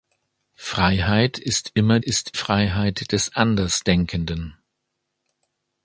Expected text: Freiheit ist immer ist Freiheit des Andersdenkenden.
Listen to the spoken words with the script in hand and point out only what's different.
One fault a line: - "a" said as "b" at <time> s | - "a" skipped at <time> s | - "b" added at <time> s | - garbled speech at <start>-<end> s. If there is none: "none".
none